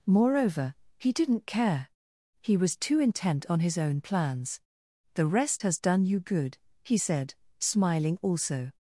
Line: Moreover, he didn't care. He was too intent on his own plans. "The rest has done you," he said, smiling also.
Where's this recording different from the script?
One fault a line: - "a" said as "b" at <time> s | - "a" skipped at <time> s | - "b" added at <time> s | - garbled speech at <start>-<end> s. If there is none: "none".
- "good" added at 6.2 s